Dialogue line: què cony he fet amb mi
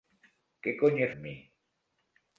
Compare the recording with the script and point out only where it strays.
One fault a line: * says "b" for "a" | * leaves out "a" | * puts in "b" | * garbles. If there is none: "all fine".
* leaves out "fet"